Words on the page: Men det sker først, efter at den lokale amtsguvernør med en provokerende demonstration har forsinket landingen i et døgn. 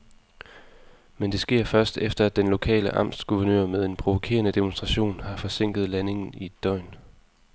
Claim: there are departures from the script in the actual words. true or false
false